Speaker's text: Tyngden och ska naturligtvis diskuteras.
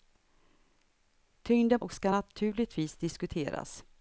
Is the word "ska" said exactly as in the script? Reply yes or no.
yes